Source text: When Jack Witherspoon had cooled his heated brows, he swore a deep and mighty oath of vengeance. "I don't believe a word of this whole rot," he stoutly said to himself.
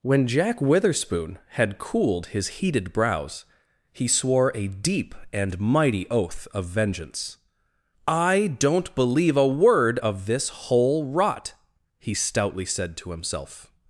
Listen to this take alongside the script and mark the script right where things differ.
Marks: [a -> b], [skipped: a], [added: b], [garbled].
When Jack Witherspoon had cooled his heated brows, he swore a deep and mighty oath of vengeance. "I don't believe a word of this whole rot," he stoutly said to himself.